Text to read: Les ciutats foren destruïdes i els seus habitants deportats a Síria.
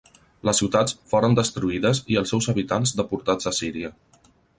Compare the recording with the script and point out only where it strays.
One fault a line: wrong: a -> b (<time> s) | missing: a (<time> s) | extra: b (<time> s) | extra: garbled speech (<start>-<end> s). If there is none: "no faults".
no faults